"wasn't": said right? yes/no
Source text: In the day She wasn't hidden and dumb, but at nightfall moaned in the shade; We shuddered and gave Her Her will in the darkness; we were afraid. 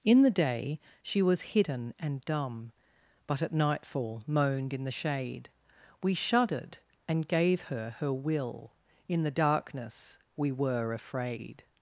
no